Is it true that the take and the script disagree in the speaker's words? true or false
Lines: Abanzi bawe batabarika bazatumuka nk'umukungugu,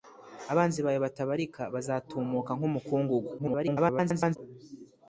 true